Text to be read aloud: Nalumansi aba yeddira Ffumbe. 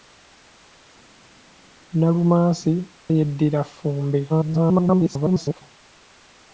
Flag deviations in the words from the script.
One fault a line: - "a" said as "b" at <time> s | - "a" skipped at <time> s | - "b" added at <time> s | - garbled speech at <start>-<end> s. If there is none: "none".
- "aba" skipped at 2.7 s
- garbled speech at 4.3-5.6 s